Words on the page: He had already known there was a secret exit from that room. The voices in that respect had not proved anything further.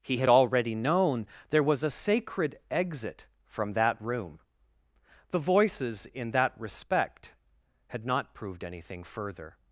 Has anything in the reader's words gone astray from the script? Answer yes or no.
yes